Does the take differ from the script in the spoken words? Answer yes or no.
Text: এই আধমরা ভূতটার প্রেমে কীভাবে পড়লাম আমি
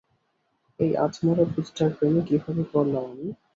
no